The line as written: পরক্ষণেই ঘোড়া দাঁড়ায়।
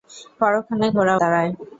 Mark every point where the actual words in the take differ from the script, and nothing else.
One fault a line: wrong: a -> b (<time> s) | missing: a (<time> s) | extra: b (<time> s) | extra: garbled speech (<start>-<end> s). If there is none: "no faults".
no faults